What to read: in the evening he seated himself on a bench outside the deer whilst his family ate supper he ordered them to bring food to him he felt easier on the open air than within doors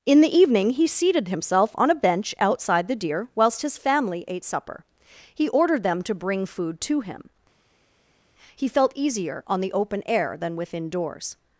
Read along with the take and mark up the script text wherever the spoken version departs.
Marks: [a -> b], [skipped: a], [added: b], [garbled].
in the evening he seated himself on a bench outside the deer whilst his family ate supper he ordered them to bring food to him he felt easier on the open air than within doors